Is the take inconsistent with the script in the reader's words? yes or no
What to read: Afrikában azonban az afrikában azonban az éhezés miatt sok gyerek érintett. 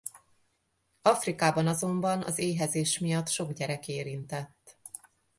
yes